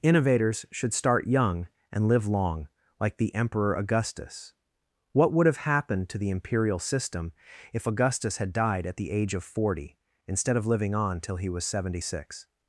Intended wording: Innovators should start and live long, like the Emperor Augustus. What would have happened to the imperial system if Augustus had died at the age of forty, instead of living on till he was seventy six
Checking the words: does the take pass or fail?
fail